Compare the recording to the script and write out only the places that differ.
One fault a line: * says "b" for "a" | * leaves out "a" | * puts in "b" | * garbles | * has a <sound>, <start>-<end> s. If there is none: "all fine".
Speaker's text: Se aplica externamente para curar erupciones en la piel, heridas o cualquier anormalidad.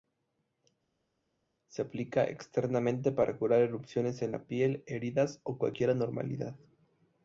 all fine